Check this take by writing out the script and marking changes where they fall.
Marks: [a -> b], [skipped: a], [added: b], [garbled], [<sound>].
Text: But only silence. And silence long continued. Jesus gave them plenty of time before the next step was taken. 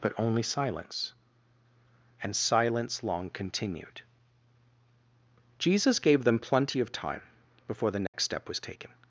But only silence. And silence long continued. Jesus gave them plenty of time before the next [dropout] step was taken.